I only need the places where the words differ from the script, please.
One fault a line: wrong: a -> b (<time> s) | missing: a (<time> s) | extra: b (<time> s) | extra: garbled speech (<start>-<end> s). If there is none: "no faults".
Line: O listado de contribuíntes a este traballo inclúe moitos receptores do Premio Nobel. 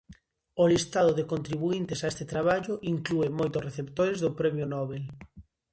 no faults